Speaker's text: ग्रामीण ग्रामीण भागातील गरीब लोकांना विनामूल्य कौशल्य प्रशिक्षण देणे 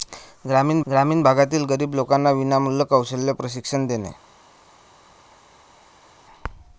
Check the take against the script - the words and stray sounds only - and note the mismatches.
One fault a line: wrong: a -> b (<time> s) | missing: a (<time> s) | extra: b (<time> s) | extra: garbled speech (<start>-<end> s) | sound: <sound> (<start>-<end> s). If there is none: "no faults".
no faults